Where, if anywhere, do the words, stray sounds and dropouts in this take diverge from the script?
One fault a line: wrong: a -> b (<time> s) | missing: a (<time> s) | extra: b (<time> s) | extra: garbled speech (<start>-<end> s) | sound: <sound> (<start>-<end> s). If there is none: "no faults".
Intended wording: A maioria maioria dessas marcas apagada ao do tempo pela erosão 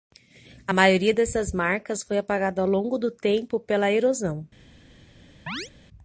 missing: maioria (1.1 s)
extra: foi (2.0 s)
extra: longo (2.7 s)
sound: chirp (5.5-5.7 s)